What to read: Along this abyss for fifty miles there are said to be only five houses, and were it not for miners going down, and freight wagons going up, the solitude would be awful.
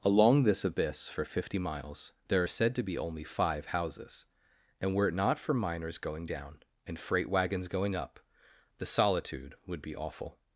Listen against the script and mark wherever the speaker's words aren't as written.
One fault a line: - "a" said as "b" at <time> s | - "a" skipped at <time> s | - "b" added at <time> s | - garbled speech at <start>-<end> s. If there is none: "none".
none